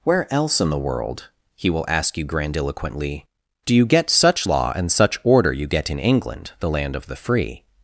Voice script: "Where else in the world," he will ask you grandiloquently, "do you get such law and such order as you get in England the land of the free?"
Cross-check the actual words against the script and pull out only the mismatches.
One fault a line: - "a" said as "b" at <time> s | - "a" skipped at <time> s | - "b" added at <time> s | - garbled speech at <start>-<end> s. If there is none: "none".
- "as" skipped at 5.5 s